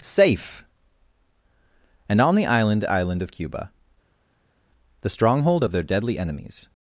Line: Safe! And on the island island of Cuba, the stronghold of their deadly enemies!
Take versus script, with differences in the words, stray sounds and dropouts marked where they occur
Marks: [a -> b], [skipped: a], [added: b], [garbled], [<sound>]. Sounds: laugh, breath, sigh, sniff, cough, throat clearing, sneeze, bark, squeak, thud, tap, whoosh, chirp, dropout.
Safe! And on the island island of Cuba, the stronghold of their deadly enemies!